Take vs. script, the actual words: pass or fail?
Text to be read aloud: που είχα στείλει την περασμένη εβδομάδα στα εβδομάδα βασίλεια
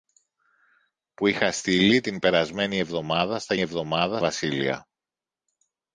pass